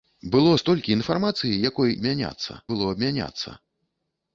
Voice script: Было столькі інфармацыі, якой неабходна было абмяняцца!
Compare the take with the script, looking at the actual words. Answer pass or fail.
fail